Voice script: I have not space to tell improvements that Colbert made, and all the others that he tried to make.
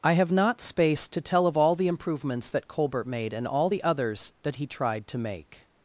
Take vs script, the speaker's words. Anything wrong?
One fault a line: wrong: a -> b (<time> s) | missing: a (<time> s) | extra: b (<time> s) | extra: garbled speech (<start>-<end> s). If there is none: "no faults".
extra: of all the (1.4 s)